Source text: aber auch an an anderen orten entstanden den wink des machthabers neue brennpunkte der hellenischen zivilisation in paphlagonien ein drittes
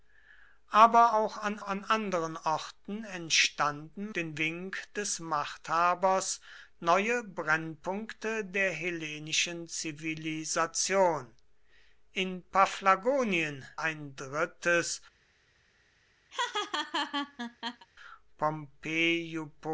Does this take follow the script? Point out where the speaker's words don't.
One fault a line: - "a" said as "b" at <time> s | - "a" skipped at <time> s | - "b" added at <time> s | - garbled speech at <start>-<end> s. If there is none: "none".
none